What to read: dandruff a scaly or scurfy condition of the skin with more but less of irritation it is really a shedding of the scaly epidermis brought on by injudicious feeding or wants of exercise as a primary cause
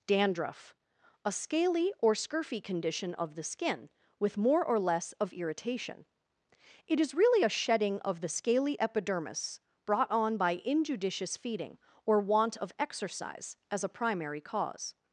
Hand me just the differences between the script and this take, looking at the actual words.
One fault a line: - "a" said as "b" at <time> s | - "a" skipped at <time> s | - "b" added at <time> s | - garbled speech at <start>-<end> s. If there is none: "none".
- "but" said as "or" at 4.6 s
- "wants" said as "want" at 12.2 s